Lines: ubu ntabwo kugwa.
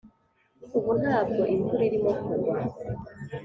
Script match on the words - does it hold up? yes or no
no